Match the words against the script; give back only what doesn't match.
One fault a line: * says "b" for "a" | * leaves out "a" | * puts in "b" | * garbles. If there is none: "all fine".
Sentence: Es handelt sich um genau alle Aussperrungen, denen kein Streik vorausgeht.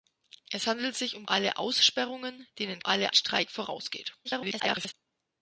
* leaves out "genau"
* says "alle" for "kein"
* garbles